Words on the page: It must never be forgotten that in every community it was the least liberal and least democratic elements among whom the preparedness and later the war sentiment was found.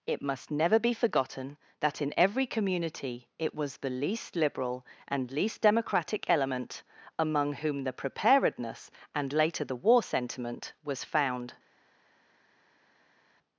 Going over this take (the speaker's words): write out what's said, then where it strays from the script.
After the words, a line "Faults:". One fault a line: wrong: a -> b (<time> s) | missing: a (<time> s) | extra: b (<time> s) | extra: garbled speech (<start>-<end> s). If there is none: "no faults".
It must never be forgotten that in every community it was the least liberal and least democratic element among whom the preparedness and later the war sentiment was found.
Faults:
wrong: elements -> element (6.3 s)